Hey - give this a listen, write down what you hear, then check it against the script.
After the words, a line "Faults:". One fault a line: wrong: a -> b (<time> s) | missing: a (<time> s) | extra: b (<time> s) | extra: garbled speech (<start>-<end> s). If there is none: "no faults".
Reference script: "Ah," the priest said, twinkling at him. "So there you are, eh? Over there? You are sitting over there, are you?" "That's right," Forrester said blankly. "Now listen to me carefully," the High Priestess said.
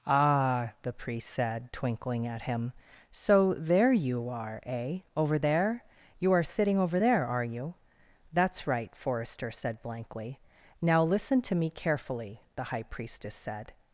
"Ah," the priest said, twinkling at him. "So there you are, eh? Over there? You are sitting over there, are you?" "That's right," Forrester said blankly. "Now listen to me carefully," the High Priestess said.
Faults:
no faults